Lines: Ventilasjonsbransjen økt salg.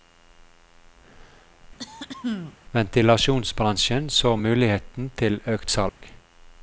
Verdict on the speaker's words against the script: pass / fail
fail